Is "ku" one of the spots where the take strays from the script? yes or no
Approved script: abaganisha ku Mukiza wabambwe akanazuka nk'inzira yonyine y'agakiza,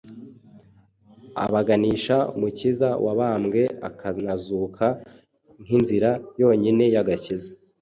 yes